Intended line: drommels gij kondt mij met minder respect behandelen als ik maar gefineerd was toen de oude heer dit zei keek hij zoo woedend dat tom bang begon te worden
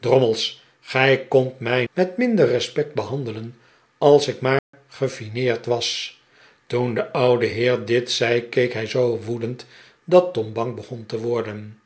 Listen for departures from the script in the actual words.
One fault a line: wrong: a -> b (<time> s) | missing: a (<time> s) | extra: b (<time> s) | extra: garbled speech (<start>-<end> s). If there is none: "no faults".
no faults